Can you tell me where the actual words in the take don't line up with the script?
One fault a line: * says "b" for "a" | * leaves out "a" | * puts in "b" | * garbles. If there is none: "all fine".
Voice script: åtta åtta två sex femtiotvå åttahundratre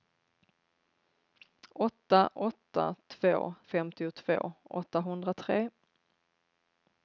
* leaves out "sex"